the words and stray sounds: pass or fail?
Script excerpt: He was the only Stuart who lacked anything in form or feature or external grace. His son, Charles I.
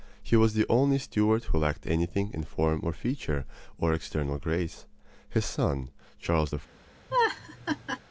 fail